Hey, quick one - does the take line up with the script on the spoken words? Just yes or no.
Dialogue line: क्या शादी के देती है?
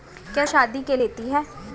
yes